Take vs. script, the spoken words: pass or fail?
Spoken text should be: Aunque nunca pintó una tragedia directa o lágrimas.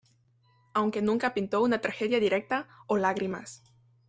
pass